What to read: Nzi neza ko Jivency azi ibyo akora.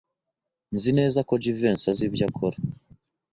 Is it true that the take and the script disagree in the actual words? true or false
false